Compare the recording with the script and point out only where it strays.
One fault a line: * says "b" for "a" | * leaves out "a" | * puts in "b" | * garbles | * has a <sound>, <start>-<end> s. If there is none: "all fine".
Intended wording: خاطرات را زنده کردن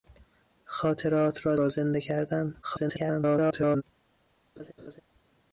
* puts in "را"
* garbles
* has a laugh, 4.6-5.0 s